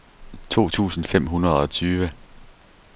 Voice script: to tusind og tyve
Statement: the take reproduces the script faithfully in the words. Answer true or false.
false